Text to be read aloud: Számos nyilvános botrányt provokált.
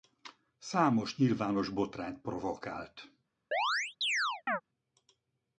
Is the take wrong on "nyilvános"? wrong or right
right